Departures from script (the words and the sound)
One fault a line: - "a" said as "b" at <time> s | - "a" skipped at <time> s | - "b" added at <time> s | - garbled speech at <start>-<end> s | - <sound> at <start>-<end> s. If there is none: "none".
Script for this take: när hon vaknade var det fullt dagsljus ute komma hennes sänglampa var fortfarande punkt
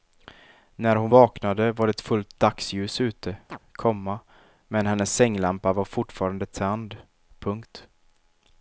- chirp at 3.5-3.6 s
- "men" added at 4.7 s
- "tänd" added at 6.5 s